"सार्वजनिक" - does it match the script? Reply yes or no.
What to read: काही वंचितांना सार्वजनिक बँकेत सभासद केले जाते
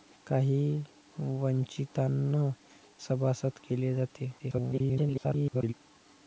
no